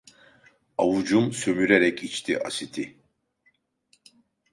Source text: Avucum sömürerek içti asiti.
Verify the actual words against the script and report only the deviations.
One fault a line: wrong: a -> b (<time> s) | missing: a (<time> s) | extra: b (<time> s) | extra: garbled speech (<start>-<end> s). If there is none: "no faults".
no faults